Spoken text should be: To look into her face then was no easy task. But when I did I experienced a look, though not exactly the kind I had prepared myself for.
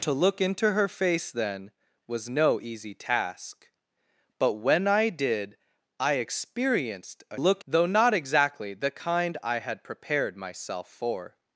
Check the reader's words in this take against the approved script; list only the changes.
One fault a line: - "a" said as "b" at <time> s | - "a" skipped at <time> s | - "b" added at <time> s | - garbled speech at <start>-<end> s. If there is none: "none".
none